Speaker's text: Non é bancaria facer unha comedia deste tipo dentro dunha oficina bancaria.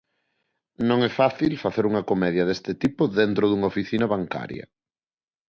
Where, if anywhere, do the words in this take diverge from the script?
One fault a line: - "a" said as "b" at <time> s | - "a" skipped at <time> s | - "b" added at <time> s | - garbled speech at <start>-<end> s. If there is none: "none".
- "bancaria" said as "fácil" at 1.2 s